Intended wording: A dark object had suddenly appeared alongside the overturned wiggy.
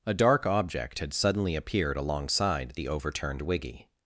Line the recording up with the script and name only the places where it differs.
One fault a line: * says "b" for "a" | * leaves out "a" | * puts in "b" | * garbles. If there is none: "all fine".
all fine